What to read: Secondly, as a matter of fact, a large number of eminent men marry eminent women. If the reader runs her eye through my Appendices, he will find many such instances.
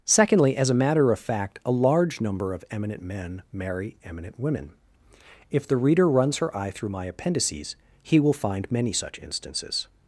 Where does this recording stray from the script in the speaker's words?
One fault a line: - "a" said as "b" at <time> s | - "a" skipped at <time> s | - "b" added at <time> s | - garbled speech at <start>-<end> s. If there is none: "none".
none